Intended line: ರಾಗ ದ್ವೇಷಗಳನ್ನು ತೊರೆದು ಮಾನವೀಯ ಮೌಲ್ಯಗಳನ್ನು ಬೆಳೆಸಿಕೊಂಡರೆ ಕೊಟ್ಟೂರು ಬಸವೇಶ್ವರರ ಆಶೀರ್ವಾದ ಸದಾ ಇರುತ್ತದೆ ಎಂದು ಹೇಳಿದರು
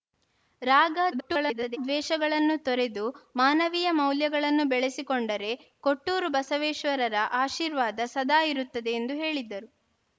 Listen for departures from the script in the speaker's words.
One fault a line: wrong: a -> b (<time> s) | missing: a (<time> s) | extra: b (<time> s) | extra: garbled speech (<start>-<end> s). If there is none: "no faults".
extra: garbled speech (1.1-1.8 s)